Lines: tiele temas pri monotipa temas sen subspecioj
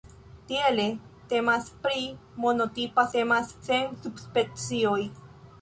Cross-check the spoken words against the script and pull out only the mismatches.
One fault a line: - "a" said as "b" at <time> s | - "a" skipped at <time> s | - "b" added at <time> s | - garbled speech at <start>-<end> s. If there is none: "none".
none